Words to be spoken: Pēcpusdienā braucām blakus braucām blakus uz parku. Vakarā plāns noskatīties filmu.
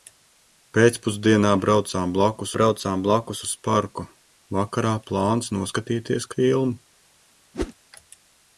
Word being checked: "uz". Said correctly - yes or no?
yes